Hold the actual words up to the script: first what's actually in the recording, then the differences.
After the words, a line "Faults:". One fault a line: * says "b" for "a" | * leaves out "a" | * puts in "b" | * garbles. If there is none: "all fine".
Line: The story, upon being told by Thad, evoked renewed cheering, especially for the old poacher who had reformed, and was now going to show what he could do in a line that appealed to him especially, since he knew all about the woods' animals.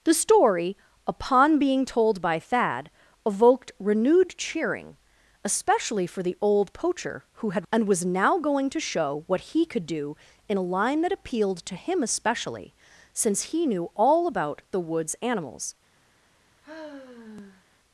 The story, upon being told by Thad, evoked renewed cheering, especially for the old poacher who had and was now going to show what he could do in a line that appealed to him especially, since he knew all about the woods' animals.
Faults:
* leaves out "reformed"